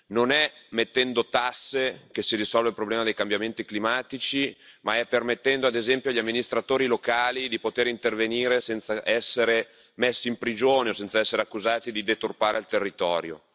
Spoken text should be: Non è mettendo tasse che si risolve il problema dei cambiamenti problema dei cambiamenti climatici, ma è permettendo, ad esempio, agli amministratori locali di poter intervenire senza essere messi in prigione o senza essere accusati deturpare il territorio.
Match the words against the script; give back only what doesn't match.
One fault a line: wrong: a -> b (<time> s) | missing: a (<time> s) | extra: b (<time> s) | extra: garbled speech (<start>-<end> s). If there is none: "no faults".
missing: problema dei cambiamenti (3.6 s)
extra: di (11.9 s)